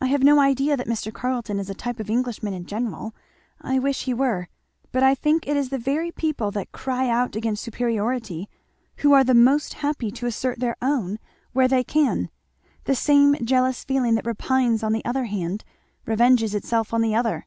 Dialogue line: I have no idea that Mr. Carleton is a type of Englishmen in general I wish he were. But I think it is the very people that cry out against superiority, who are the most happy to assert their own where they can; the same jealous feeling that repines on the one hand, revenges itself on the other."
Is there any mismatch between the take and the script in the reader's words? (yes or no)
no